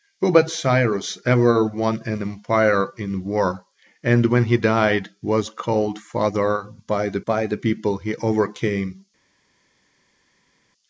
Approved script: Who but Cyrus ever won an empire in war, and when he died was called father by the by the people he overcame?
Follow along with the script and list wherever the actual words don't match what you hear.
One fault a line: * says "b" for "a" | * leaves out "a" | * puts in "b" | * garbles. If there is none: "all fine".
all fine